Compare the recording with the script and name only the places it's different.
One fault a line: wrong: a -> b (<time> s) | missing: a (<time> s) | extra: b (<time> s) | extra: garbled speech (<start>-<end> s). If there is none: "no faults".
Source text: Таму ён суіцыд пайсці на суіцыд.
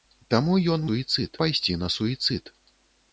no faults